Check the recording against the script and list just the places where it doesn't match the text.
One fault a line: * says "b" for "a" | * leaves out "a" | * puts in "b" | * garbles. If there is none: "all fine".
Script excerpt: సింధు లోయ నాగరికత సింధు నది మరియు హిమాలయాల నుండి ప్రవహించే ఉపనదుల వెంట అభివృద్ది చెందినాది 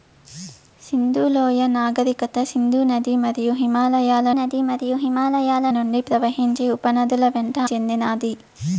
* puts in "నది మరియు హిమాలయాల"
* leaves out "అభివృద్ది"